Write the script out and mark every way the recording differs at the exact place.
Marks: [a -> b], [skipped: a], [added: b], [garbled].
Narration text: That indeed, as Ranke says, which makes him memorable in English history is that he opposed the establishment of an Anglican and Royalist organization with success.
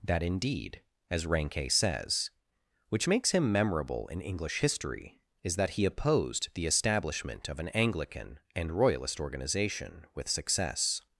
That indeed, as Ranke says, which makes him memorable in English history is that he opposed the establishment of an Anglican and Royalist organization with success.